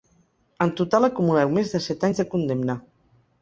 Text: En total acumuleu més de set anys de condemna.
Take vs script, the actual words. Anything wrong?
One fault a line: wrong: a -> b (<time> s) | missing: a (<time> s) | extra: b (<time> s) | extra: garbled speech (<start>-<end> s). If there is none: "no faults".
no faults